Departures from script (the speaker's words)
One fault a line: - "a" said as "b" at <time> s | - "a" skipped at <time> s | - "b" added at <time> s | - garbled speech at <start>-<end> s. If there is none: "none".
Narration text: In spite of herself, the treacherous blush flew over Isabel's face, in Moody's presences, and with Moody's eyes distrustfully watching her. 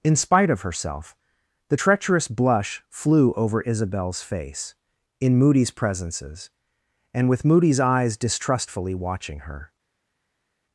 none